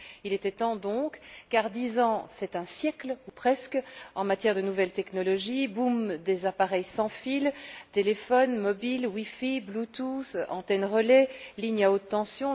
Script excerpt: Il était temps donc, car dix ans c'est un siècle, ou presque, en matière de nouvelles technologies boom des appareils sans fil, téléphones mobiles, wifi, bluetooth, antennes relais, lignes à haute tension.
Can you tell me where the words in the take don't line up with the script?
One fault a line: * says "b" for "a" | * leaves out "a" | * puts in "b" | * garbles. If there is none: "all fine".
all fine